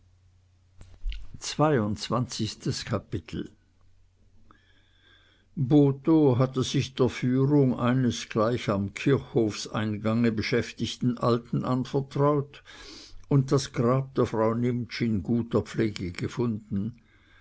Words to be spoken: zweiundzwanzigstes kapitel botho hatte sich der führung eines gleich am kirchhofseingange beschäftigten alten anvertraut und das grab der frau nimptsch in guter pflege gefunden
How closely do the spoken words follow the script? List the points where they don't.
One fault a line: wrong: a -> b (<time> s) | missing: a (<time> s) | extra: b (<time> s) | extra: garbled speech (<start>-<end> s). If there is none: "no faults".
no faults